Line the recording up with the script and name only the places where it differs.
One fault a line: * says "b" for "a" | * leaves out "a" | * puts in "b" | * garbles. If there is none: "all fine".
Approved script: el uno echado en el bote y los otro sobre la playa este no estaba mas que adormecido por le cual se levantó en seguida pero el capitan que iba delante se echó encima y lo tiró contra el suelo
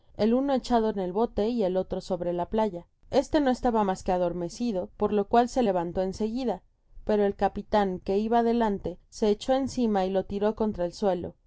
* says "el" for "los"
* says "lo" for "le"